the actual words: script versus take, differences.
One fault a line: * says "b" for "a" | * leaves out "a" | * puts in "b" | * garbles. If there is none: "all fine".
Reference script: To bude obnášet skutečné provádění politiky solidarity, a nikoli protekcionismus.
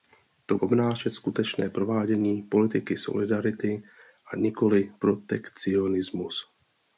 * leaves out "bude"